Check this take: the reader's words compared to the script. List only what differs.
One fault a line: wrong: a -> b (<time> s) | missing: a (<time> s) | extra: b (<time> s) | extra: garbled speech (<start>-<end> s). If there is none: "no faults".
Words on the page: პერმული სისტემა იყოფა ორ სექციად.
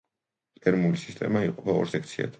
no faults